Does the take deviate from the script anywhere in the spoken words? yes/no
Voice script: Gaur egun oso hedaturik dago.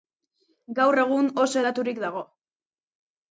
no